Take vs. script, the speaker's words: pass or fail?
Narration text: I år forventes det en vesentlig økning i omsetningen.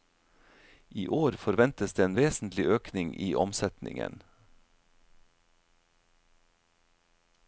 pass